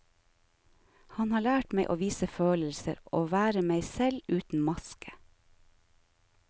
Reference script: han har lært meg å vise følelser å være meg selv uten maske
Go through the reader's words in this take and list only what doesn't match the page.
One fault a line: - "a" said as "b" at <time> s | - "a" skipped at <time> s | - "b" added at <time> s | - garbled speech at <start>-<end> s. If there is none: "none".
none